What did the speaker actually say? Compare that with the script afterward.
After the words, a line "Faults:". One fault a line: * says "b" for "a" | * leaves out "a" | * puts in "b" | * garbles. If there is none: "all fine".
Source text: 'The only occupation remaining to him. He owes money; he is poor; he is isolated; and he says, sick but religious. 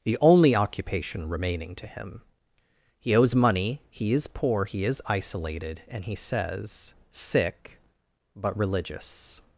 'The only occupation remaining to him. He owes money; he is poor; he is isolated; and he says, sick but religious.
Faults:
all fine